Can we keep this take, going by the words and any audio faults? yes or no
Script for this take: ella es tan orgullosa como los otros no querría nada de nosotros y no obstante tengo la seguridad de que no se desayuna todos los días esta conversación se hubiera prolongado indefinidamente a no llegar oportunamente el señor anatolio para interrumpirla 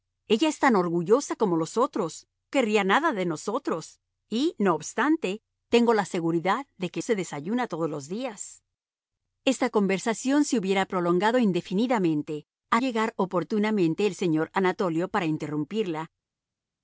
no